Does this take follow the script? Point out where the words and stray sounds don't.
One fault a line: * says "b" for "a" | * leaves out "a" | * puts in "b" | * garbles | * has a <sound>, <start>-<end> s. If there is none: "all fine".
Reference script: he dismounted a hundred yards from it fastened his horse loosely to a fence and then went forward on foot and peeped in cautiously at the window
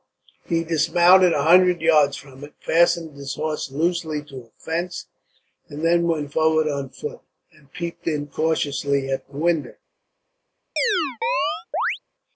* has a chirp, 10.8-12.0 s